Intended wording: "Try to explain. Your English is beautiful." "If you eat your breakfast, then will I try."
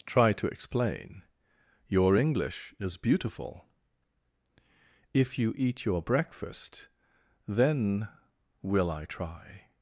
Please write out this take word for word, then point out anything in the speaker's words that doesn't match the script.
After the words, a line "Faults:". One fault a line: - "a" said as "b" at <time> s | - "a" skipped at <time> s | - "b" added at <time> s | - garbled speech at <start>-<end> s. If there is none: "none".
"Try to explain. Your English is beautiful." "If you eat your breakfast, then will I try."
Faults:
none